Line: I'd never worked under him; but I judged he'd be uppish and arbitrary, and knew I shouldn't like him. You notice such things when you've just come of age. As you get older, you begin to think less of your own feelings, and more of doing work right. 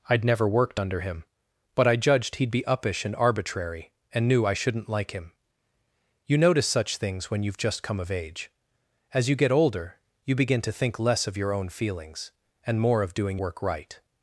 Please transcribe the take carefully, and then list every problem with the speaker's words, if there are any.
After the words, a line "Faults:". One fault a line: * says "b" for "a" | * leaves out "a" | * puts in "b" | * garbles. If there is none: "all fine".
I'd never worked under him; but I judged he'd be uppish and arbitrary, and knew I shouldn't like him. You notice such things when you've just come of age. As you get older, you begin to think less of your own feelings, and more of doing work right.
Faults:
all fine